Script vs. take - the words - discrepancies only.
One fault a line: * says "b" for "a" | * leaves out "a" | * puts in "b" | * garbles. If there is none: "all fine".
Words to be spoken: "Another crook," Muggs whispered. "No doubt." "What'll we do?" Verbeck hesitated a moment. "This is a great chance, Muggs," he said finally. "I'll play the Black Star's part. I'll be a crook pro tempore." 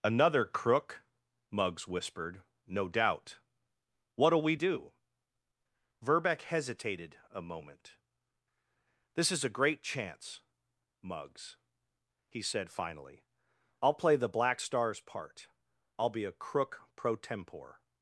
all fine